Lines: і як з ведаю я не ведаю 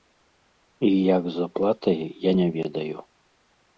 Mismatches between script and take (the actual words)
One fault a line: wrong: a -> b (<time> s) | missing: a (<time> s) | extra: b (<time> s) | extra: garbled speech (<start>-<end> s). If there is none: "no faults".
wrong: ведаю -> аплатай (1.5 s)